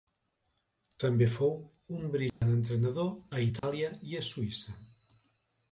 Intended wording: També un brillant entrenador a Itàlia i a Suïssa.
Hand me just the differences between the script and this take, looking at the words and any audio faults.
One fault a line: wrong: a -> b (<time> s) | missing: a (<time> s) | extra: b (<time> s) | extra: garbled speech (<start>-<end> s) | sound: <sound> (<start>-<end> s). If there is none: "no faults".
extra: fou (1.3 s)
sound: dropout (2.3-2.4 s)
sound: dropout (3.6-3.6 s)